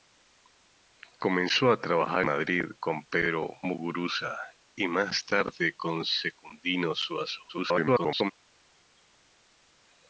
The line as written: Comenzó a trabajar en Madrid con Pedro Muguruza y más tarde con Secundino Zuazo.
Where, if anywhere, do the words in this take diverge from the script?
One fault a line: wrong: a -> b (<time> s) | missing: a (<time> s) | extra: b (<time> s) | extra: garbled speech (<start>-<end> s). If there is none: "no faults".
missing: en (2.2 s)
extra: garbled speech (7.5-8.3 s)